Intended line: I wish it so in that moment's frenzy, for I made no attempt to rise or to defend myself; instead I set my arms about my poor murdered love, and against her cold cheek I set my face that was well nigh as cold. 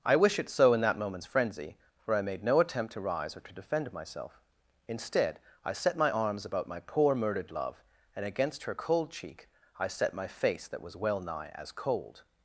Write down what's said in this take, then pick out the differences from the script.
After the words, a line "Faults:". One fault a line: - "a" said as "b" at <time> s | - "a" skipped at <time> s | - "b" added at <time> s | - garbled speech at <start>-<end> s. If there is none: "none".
I wish it so in that moment's frenzy, for I made no attempt to rise or to defend myself; instead I set my arms about my poor murdered love, and against her cold cheek I set my face that was well nigh as cold.
Faults:
none